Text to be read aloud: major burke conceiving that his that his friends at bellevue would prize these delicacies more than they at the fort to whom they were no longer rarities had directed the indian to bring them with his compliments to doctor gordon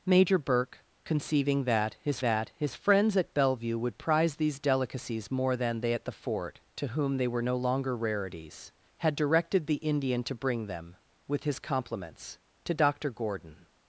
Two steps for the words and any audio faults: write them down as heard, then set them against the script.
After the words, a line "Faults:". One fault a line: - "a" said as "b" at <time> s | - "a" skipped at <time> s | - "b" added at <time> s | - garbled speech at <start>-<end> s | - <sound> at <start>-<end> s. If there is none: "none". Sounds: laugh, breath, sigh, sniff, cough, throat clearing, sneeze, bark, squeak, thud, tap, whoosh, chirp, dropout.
major burke conceiving that his that his friends at bellevue would prize these delicacies more than they at the fort to whom they were no longer rarities had directed the indian to bring them with his compliments to doctor gordon
Faults:
none